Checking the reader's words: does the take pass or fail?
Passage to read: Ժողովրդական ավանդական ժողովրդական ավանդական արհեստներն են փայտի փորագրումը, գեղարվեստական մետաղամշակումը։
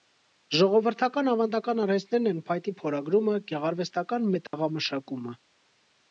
fail